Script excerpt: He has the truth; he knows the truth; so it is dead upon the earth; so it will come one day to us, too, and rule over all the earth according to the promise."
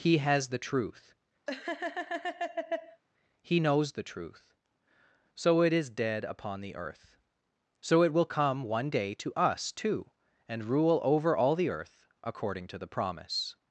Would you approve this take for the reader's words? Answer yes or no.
yes